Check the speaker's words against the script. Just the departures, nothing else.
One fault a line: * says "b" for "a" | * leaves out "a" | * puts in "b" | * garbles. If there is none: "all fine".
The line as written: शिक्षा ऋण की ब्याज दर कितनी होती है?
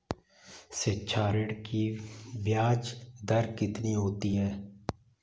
all fine